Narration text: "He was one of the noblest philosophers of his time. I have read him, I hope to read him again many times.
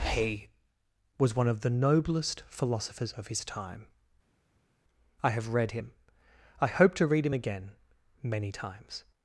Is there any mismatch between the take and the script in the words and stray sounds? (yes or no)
no